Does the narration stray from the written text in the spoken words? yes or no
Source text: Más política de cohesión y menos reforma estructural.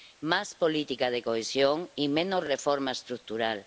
no